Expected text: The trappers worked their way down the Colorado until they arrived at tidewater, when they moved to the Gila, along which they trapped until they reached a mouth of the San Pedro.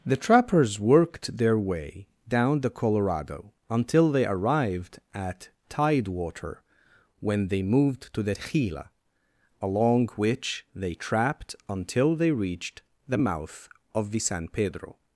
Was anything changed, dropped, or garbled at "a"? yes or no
yes